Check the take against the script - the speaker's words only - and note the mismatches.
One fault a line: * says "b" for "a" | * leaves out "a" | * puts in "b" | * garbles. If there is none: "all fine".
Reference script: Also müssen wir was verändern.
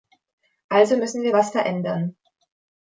all fine